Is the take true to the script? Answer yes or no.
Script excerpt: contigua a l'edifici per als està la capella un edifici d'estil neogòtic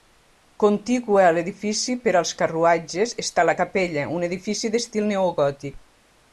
no